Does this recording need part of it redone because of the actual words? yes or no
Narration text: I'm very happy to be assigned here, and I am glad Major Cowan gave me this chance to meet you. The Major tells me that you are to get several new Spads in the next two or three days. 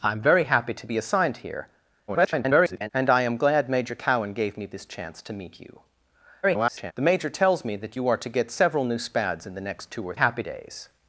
yes